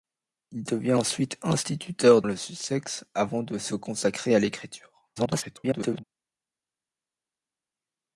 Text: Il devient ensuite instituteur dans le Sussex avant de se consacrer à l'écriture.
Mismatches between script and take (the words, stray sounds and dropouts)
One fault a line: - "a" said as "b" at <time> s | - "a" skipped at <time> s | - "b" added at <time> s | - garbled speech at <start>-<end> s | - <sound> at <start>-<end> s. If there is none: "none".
- "dans" skipped at 2.2 s
- garbled speech at 5.2-6.0 s